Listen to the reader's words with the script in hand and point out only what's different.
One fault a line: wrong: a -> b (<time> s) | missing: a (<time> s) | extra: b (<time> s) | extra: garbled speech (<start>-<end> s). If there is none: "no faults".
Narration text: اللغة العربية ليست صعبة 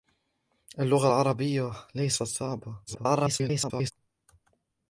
extra: garbled speech (2.9-3.9 s)